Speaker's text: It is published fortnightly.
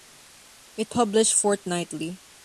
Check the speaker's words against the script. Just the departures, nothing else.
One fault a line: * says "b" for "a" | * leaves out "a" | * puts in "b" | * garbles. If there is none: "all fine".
* leaves out "is"